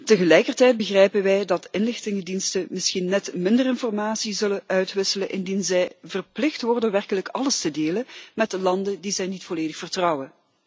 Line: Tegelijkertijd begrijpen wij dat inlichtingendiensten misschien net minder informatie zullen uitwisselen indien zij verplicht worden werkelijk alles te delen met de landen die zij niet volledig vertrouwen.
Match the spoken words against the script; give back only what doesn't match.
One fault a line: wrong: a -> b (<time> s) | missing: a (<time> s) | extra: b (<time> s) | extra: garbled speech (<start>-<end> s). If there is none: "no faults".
no faults